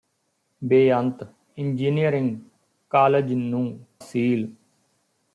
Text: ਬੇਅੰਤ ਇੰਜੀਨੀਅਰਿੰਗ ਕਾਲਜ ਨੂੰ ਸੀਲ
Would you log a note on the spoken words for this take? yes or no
no